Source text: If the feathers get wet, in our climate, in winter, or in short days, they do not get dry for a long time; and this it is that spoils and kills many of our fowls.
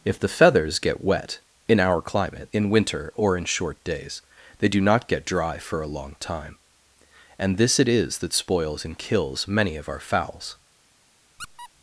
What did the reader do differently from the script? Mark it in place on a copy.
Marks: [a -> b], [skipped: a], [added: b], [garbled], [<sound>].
If the feathers get wet, in our climate, in winter, or in short days, they do not get dry for a long time; and this it is that spoils and kills many of our fowls. [squeak]